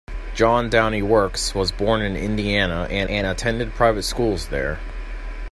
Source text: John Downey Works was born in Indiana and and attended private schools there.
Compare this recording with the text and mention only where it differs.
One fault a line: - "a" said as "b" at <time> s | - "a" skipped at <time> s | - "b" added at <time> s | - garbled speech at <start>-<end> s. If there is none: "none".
none